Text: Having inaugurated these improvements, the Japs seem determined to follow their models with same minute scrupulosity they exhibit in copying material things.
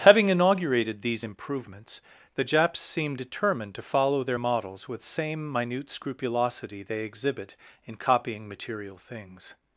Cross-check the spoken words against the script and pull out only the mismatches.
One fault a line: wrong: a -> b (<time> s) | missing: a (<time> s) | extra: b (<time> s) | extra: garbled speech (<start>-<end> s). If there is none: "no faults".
no faults